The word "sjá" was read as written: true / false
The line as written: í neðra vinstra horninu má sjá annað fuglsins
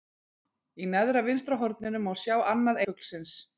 true